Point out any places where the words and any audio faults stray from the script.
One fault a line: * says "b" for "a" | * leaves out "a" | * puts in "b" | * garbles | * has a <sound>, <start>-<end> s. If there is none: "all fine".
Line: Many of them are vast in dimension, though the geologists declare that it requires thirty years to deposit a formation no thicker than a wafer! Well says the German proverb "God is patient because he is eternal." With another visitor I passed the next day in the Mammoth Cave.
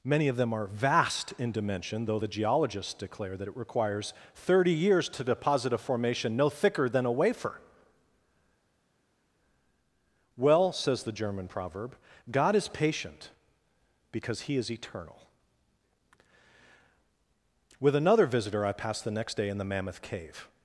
all fine